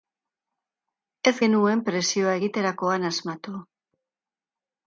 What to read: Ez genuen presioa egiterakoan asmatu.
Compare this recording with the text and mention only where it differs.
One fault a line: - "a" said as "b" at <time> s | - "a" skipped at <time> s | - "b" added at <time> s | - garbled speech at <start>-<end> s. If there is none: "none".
none